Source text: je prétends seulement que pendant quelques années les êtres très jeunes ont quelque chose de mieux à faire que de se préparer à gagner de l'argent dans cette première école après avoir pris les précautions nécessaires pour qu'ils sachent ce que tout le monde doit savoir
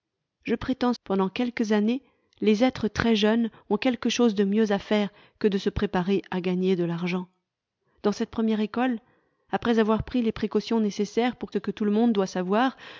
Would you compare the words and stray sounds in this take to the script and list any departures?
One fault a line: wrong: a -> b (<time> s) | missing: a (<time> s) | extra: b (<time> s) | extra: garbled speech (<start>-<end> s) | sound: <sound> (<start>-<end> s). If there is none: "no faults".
missing: seulement que (0.9 s)
missing: qu'ils sachent (11.5 s)